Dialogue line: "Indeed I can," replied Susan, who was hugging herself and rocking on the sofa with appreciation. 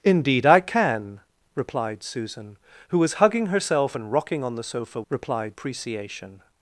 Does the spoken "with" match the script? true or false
false